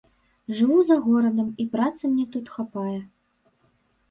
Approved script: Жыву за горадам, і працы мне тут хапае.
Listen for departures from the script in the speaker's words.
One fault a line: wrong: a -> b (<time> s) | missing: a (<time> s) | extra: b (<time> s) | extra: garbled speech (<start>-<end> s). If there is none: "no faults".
no faults